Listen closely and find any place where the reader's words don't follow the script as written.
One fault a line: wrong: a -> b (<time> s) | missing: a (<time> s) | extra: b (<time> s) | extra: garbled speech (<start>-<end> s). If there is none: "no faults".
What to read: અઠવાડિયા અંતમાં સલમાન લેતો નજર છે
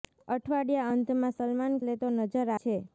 no faults